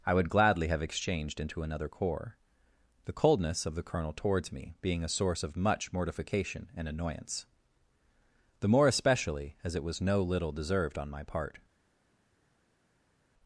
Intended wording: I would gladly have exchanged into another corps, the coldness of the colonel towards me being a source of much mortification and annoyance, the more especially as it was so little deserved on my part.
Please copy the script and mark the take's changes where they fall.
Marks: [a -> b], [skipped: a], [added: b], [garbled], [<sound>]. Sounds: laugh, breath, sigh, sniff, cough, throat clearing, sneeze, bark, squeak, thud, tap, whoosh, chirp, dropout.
I would gladly have exchanged into another corps, the coldness of the colonel towards me being a source of much mortification and annoyance, the more especially as it was [so -> no] little deserved on my part.